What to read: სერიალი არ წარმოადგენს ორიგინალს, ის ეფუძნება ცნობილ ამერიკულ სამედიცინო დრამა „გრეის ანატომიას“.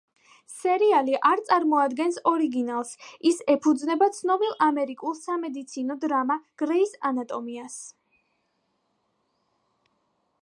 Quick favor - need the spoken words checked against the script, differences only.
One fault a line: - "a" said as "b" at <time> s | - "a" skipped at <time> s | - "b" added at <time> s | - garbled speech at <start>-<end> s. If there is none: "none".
none